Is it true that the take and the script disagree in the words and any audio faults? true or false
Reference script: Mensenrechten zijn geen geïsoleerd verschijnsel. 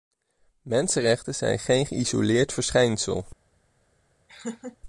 true